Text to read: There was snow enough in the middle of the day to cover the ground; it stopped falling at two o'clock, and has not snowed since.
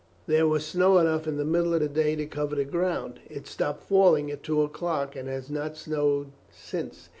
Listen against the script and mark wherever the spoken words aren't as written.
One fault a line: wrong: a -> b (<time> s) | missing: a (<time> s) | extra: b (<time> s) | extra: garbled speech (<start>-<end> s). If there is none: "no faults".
no faults